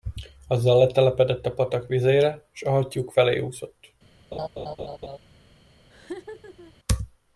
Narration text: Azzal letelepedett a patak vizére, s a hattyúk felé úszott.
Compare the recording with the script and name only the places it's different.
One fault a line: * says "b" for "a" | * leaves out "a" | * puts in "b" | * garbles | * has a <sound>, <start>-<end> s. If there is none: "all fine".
* has a laugh, 4.3-5.2 s
* has a laugh, 5.9-6.7 s